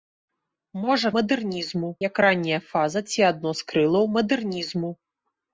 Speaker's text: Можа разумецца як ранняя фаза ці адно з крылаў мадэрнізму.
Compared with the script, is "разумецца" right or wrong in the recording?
wrong